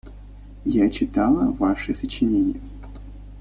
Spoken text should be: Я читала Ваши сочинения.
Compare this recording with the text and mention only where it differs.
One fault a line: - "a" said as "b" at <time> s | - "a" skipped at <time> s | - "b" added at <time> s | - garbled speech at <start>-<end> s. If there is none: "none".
none